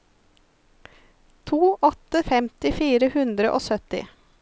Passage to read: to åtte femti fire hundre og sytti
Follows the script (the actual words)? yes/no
yes